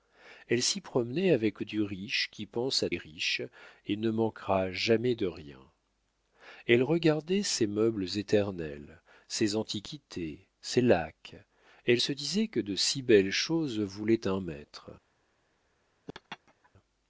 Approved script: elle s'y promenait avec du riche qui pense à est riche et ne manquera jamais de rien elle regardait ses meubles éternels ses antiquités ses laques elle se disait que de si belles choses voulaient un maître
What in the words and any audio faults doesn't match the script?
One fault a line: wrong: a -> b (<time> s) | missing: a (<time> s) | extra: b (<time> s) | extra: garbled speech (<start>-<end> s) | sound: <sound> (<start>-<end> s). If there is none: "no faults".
sound: laugh (16.1-16.7 s)